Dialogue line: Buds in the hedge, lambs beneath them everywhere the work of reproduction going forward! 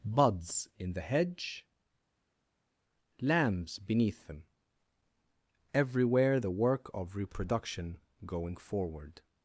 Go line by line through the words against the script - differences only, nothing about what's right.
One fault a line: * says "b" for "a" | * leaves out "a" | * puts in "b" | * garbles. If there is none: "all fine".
all fine